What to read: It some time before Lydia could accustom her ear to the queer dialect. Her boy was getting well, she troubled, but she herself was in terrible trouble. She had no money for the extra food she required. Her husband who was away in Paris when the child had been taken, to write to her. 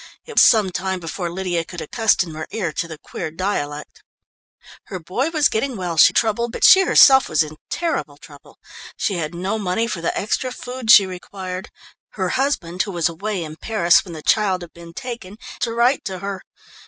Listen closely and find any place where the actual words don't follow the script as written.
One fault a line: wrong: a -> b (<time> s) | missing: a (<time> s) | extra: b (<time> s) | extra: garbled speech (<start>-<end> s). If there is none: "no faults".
no faults